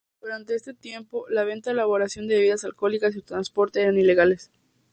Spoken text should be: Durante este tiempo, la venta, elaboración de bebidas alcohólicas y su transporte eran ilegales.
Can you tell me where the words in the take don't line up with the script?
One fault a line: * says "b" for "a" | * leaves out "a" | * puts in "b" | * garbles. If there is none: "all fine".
all fine